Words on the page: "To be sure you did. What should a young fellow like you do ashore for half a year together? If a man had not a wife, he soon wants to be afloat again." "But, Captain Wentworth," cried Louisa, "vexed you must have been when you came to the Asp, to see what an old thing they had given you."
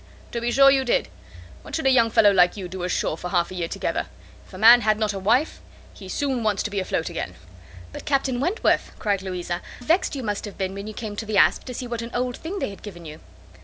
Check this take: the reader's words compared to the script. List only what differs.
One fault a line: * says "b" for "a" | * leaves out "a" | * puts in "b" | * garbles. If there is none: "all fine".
all fine